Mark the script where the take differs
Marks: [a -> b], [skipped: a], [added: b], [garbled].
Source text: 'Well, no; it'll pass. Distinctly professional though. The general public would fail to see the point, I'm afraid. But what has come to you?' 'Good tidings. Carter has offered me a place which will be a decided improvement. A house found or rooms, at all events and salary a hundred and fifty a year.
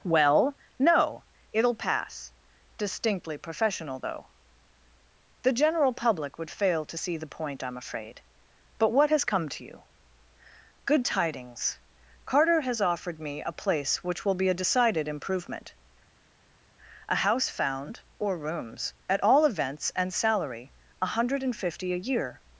'Well, no; it'll pass. Distinctly professional though. The general public would fail to see the point, I'm afraid. But what has come to you?' 'Good tidings. Carter has offered me a place which will be a decided improvement. A house found or rooms, at all events and salary a hundred and fifty a year.